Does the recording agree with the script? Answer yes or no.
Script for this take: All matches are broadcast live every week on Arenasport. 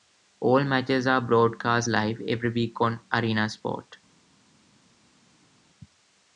yes